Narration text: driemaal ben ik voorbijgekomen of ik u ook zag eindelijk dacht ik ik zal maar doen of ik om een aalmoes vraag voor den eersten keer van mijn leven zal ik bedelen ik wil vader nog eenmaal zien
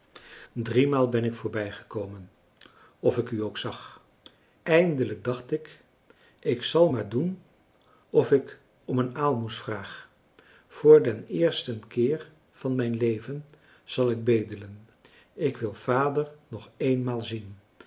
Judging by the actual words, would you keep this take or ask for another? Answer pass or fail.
pass